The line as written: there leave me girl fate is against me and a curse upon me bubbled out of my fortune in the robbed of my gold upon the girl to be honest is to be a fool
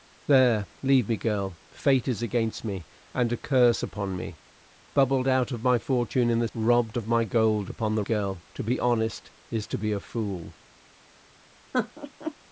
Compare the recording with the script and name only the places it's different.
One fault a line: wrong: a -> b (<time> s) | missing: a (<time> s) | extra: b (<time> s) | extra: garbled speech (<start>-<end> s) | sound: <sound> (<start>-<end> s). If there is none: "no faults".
sound: laugh (11.7-12.3 s)